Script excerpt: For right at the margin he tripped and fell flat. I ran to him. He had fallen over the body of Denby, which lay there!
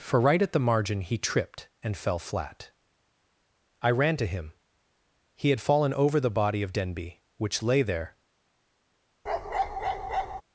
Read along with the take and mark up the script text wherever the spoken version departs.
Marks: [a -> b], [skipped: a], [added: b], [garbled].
For right at the margin he tripped and fell flat. I ran to him. He had fallen over the body of Denby, which lay there!